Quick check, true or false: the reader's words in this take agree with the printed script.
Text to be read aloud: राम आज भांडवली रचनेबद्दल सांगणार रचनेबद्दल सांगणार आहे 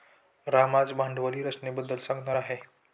false